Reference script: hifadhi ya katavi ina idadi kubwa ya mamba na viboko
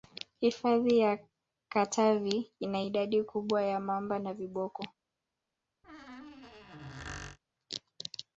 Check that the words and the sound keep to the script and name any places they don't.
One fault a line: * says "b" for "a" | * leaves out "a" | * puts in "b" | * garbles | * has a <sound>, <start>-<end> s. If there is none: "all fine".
* has a squeak, 5.8-7.4 s